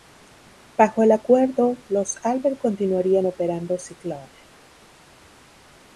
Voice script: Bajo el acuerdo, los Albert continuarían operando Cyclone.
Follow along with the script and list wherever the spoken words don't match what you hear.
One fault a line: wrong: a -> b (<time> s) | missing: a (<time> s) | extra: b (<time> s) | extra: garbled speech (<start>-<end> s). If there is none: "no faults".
no faults